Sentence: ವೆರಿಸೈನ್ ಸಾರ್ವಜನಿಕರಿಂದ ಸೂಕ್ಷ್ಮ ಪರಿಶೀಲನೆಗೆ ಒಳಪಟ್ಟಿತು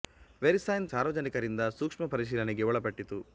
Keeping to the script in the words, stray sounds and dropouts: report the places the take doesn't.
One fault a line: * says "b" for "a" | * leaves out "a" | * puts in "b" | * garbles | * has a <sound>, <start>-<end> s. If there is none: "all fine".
all fine